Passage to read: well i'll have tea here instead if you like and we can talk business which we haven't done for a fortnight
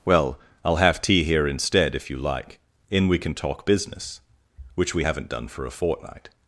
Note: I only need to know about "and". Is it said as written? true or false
false